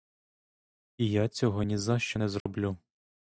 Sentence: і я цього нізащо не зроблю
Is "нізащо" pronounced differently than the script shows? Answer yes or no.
no